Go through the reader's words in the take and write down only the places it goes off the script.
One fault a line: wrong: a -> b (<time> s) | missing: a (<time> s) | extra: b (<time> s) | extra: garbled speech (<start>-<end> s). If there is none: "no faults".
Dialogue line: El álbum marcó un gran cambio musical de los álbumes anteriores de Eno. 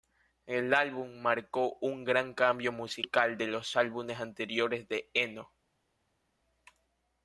no faults